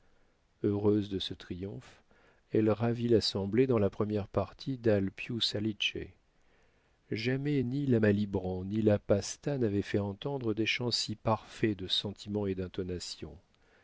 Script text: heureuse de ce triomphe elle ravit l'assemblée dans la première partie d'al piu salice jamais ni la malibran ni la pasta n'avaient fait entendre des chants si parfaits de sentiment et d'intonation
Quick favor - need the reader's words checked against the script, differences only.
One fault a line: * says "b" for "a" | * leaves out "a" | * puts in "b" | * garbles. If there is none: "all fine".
all fine